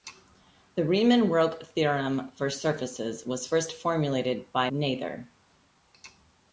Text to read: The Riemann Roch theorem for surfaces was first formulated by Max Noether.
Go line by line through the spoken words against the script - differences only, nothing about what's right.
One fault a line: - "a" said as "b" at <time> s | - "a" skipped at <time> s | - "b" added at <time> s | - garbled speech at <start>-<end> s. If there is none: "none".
- "Max" skipped at 4.7 s